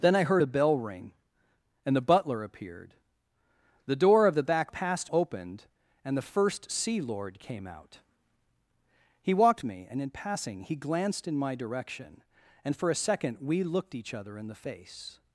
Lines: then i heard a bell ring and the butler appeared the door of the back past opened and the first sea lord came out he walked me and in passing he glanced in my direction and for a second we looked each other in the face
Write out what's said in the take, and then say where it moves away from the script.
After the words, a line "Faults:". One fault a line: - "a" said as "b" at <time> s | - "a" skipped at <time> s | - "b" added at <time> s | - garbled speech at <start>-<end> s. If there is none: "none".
then i heard a bell ring and the butler appeared the door of the back past opened and the first sea lord came out he walked me and in passing he glanced in my direction and for a second we looked each other in the face
Faults:
none